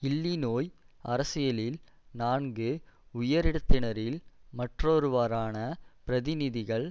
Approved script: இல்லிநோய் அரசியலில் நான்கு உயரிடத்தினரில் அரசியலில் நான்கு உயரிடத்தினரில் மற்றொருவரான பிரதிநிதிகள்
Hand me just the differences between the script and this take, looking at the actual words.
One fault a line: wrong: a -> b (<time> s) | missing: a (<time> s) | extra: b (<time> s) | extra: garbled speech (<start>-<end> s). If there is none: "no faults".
missing: அரசியலில் நான்கு உயரிடத்தினரில் (4.2 s)